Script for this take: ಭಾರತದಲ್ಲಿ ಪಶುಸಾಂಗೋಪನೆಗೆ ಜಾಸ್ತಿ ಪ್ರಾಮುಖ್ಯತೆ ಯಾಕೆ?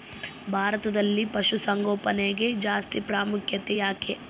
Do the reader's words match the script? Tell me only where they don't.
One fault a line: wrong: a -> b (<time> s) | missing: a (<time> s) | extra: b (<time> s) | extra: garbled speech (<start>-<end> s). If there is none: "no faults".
no faults